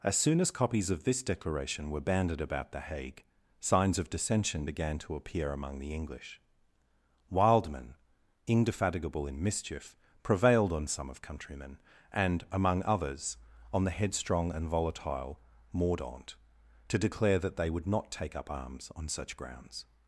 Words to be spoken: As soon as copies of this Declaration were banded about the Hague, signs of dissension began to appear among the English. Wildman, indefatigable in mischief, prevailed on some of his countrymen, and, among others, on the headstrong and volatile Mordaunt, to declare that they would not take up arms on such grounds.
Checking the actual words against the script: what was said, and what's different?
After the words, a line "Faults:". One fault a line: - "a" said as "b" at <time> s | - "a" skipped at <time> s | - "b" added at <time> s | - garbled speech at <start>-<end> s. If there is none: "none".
As soon as copies of this Declaration were banded about the Hague, signs of dissension began to appear among the English. Wildman, indefatigable in mischief, prevailed on some of countrymen, and, among others, on the headstrong and volatile Mordaunt, to declare that they would not take up arms on such grounds.
Faults:
- "his" skipped at 11.2 s